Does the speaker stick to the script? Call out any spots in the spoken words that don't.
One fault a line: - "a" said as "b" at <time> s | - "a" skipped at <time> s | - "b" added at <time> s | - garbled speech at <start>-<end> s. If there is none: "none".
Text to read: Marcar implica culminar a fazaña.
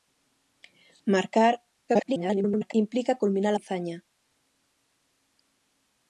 - garbled speech at 1.9-2.7 s
- "a" skipped at 3.5 s